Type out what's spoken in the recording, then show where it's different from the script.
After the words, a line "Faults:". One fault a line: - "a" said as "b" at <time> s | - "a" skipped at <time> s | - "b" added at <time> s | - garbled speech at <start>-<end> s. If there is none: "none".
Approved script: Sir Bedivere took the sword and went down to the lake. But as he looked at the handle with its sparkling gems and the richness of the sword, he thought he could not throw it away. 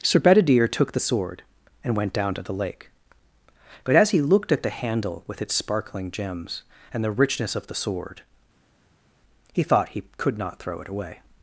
Sir Bedivere took the sword and went down to the lake. But as he looked at the handle with its sparkling gems and the richness of the sword, he thought he could not throw it away.
Faults:
none